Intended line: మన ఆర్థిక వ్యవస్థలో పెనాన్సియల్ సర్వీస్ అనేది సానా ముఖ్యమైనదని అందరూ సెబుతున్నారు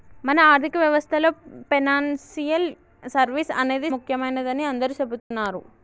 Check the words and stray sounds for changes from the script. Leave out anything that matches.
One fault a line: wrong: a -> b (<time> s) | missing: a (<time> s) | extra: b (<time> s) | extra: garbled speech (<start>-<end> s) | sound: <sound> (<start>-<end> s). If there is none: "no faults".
missing: సానా (3.9 s)
sound: dropout (5.2-5.3 s)